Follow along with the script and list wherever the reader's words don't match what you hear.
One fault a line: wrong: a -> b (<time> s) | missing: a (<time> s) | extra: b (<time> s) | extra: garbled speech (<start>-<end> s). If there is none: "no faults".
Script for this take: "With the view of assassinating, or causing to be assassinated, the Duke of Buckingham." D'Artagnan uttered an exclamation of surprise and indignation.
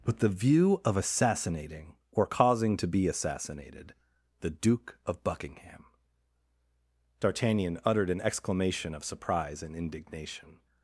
no faults